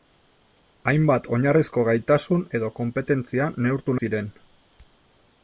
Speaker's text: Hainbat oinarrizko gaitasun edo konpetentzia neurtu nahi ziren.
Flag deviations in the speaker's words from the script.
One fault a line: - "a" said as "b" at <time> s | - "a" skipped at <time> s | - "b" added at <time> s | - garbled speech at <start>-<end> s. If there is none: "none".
- "nahi" skipped at 4.0 s